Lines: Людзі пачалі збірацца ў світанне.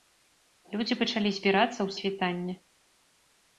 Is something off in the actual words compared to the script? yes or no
no